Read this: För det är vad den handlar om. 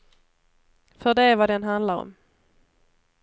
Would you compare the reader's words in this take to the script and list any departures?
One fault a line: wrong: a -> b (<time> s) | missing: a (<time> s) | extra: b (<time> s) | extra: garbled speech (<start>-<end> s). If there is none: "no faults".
no faults